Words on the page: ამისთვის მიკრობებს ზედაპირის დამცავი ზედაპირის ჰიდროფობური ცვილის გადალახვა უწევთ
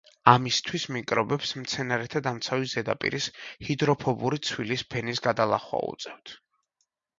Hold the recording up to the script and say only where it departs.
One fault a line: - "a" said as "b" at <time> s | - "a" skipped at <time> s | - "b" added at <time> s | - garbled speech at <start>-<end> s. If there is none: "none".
- "ზედაპირის" said as "მცენარეთა" at 1.6 s
- "ფენის" added at 5.0 s